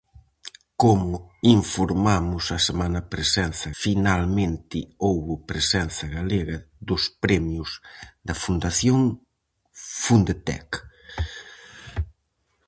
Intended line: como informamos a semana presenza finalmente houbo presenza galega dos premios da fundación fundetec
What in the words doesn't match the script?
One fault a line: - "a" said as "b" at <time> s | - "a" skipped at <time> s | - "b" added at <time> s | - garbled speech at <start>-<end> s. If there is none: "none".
none